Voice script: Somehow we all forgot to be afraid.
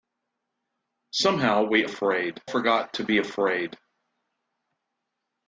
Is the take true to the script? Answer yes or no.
no